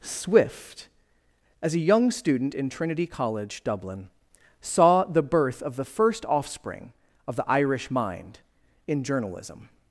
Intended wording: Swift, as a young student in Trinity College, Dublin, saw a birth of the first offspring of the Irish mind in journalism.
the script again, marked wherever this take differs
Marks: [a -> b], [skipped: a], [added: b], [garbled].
Swift, as a young student in Trinity College, Dublin, saw [a -> the] birth of the first offspring of the Irish mind in journalism.